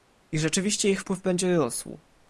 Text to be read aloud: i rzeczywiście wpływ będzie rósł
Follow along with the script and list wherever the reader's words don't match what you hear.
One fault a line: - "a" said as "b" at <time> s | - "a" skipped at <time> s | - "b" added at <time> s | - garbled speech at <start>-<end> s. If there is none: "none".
- "ich" added at 0.9 s